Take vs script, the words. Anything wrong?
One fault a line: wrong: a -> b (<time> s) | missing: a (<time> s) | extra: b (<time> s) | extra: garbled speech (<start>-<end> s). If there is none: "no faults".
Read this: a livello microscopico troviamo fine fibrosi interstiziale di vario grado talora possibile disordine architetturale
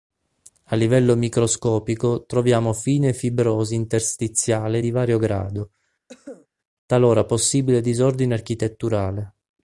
no faults